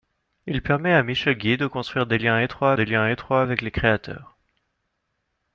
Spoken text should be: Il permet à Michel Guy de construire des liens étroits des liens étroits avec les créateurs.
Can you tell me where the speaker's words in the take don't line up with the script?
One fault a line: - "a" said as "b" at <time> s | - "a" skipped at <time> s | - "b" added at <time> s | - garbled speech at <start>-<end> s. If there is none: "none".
none